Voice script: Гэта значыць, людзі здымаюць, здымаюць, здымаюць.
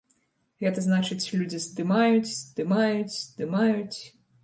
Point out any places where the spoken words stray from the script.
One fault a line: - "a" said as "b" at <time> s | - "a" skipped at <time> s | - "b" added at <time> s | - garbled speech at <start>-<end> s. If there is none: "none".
none